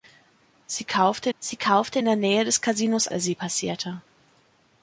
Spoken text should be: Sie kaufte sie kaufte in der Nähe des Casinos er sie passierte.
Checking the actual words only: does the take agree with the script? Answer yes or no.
yes